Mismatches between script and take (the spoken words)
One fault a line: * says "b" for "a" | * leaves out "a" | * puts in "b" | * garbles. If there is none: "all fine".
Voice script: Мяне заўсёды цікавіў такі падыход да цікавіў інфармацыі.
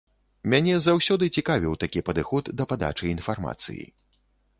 * says "падачы" for "цікавіў"